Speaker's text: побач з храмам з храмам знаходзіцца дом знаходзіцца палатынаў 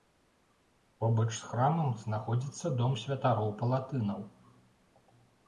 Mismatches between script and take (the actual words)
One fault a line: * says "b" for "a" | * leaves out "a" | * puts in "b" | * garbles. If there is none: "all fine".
* leaves out "з храмам"
* says "святароў" for "знаходзіцца"